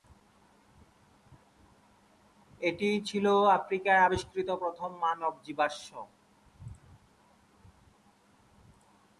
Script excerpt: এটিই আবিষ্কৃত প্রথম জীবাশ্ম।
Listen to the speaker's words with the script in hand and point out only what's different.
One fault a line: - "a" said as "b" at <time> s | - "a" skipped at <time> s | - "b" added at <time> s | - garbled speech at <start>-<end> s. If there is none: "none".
- "ছিল আফ্রিকায়" added at 3.1 s
- "মানব" added at 5.0 s